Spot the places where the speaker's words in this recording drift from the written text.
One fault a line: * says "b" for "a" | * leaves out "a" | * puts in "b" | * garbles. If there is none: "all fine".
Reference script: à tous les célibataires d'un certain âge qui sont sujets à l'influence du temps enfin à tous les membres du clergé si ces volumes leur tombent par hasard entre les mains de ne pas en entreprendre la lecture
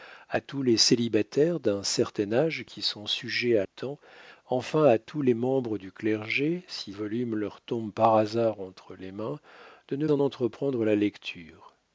* leaves out "l'influence du"
* leaves out "ces"
* leaves out "pas"